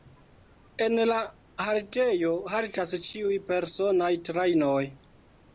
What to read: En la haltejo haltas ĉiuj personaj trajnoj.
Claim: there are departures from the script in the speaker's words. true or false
false